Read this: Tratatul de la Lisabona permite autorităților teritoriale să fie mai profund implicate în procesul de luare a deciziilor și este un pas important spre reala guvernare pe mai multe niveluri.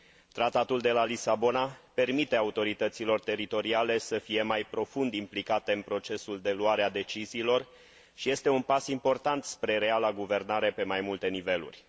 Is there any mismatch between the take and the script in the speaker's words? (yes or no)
no